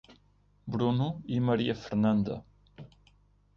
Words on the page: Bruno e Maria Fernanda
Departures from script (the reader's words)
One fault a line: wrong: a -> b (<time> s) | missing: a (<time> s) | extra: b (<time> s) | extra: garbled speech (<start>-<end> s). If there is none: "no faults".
no faults